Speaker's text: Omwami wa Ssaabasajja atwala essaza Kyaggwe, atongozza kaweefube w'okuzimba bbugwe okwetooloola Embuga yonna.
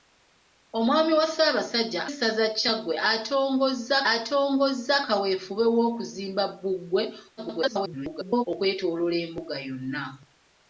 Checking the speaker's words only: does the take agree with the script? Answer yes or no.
no